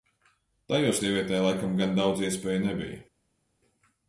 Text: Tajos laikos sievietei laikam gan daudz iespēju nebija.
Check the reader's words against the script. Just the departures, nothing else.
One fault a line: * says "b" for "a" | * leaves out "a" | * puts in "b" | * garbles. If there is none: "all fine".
* leaves out "laikos"